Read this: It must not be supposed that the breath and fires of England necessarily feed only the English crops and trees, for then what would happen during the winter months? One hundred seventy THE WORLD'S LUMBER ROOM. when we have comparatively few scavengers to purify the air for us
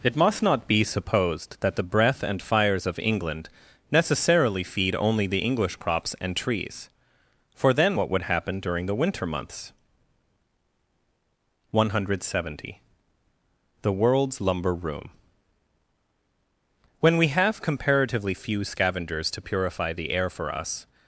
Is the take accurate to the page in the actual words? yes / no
yes